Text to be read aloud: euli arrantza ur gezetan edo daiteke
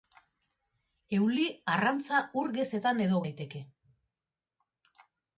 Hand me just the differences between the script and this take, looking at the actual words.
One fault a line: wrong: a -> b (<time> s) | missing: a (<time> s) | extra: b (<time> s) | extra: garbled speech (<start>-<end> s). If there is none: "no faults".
no faults